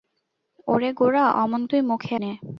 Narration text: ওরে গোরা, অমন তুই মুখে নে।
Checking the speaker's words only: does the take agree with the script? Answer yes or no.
yes